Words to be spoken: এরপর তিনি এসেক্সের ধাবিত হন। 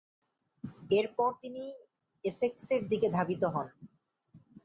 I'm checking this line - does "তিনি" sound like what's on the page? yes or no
yes